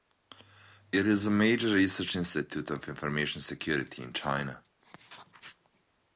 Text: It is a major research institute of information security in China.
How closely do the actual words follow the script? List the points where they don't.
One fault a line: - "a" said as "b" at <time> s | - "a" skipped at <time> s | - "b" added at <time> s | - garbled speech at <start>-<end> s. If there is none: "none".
none